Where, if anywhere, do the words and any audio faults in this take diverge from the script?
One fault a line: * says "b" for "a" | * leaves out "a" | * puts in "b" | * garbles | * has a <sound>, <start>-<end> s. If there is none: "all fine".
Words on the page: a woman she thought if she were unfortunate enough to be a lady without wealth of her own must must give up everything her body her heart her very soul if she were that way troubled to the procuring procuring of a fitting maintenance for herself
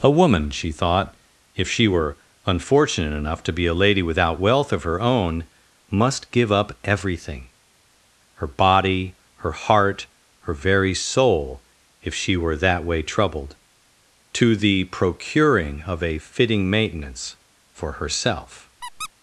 * leaves out "must"
* leaves out "procuring"
* has a squeak, 18.8-19.1 s